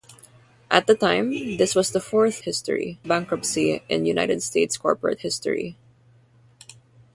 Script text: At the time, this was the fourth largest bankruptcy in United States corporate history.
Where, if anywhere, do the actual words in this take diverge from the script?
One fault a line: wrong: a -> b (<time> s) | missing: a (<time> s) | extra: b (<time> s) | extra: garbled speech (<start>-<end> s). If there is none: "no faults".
wrong: largest -> history (2.4 s)